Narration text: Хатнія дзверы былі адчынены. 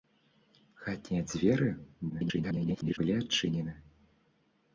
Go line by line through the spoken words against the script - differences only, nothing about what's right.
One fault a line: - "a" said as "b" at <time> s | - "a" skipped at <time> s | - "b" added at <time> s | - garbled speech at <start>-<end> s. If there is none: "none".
- garbled speech at 2.1-3.0 s